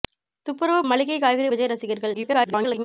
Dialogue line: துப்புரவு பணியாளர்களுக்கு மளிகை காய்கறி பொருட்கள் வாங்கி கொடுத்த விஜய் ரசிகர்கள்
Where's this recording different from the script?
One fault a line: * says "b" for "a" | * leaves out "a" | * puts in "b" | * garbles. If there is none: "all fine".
* leaves out "பணியாளர்களுக்கு"
* leaves out "பொருட்கள் வாங்கி கொடுத்த"
* garbles